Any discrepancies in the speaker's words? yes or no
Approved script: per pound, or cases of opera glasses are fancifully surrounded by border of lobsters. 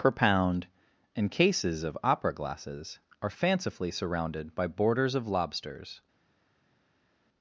yes